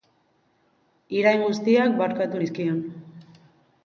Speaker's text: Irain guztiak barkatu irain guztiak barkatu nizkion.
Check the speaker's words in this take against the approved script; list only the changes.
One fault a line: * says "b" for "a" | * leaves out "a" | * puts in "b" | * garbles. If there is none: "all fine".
* leaves out "irain guztiak barkatu"